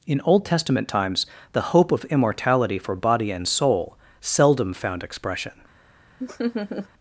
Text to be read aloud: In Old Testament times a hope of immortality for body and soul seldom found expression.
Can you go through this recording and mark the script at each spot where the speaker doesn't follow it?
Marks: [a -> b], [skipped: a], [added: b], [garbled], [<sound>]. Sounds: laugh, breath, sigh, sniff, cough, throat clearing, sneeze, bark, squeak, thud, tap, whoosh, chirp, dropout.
In Old Testament times [a -> the] hope of immortality for body and soul seldom found expression. [laugh]